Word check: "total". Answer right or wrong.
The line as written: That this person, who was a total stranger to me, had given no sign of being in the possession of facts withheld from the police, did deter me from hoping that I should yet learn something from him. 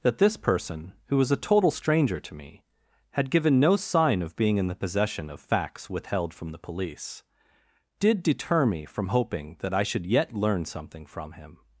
right